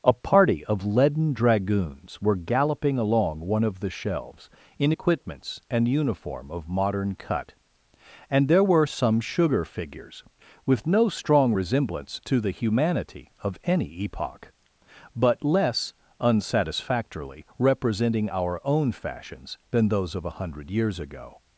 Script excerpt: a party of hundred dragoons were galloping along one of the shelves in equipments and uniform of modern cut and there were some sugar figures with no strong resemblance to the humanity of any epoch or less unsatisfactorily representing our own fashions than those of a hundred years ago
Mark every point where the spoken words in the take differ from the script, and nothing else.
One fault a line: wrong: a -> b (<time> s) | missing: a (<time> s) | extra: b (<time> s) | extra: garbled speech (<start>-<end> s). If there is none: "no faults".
wrong: hundred -> leaden (0.8 s)
wrong: or -> but (15.1 s)